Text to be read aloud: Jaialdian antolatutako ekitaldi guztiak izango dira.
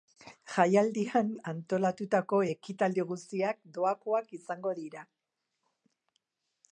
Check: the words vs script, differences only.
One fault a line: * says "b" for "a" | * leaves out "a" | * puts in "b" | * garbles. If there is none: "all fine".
* puts in "doakoak"